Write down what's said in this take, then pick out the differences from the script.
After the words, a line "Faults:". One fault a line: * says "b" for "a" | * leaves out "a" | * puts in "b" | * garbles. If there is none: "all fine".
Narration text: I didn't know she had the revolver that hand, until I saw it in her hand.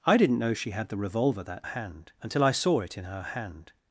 I didn't know she had the revolver that hand, until I saw it in her hand.
Faults:
all fine